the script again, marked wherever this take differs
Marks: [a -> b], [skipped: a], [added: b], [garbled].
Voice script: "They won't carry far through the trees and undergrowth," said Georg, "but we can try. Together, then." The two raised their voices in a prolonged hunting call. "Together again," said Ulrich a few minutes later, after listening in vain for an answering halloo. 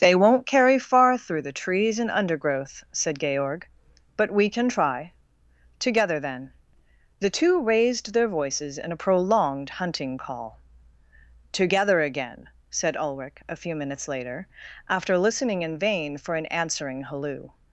"They won't carry far through the trees and undergrowth," said Georg, "but we can try. Together, then." The two raised their voices in a prolonged hunting call. "Together again," said Ulrich a few minutes later, after listening in vain for an answering halloo.